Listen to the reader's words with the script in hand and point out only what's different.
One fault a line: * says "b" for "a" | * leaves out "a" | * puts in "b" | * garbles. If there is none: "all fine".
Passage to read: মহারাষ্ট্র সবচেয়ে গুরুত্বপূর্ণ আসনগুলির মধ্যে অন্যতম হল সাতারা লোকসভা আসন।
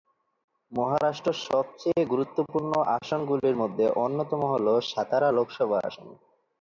all fine